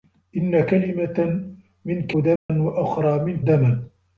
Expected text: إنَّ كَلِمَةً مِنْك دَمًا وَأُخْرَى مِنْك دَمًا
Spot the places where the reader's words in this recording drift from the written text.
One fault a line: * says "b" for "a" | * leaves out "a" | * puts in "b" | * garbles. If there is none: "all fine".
all fine